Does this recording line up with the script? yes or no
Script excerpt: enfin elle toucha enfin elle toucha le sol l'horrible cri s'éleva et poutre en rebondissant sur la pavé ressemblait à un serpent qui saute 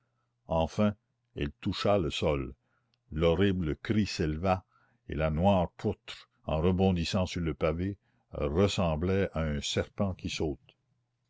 no